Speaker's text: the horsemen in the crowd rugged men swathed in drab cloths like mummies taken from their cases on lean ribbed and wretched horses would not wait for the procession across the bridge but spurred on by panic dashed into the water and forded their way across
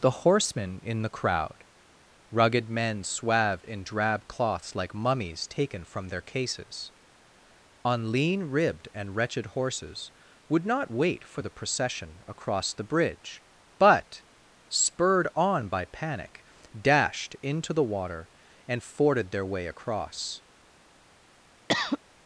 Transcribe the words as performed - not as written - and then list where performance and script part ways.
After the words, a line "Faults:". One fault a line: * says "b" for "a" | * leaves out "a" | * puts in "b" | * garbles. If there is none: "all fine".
the horsemen in the crowd rugged men swathed in drab cloths like mummies taken from their cases on lean ribbed and wretched horses would not wait for the procession across the bridge but spurred on by panic dashed into the water and forded their way across
Faults:
all fine